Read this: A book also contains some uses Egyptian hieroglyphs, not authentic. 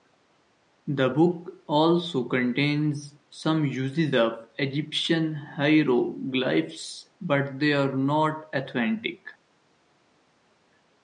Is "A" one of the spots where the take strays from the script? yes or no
yes